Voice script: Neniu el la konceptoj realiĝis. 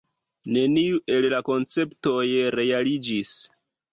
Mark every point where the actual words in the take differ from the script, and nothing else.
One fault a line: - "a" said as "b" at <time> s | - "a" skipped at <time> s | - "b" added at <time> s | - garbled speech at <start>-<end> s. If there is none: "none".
none